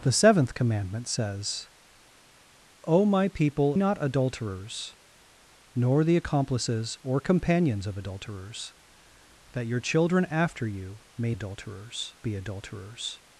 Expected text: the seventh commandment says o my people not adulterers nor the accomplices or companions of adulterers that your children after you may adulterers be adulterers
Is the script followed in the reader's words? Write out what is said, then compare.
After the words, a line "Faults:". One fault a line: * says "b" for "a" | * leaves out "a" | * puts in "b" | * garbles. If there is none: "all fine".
the seventh commandment says o my people not adulterers nor the accomplices or companions of adulterers that your children after you may adulterers be adulterers
Faults:
all fine